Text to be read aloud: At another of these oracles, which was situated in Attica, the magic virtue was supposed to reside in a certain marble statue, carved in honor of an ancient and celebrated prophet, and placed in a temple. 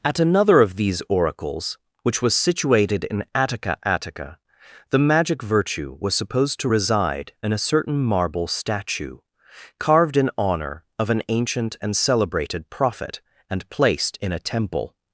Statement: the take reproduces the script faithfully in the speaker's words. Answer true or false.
false